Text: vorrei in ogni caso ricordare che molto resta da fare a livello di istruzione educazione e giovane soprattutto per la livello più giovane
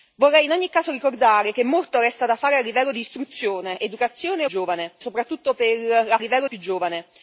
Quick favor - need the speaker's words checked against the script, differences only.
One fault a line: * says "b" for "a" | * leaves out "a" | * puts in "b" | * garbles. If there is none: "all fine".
all fine